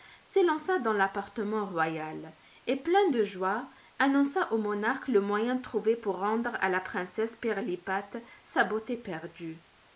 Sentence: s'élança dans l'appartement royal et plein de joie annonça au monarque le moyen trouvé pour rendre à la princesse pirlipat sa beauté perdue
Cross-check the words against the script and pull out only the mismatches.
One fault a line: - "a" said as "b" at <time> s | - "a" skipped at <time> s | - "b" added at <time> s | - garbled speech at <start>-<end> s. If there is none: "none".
none